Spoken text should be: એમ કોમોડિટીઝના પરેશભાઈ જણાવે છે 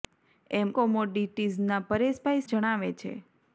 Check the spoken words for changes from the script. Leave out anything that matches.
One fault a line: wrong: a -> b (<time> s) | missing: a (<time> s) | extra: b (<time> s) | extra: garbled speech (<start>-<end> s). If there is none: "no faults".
no faults